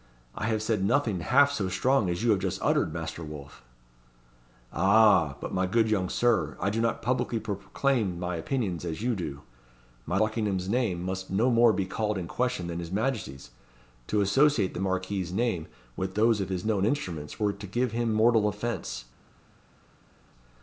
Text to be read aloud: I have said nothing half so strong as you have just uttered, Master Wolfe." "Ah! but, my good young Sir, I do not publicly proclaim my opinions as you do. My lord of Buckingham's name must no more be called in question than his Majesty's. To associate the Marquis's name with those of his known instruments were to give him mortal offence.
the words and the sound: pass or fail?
fail